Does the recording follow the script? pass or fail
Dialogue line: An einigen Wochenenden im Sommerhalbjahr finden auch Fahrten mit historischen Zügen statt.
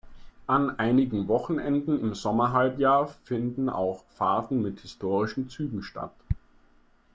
pass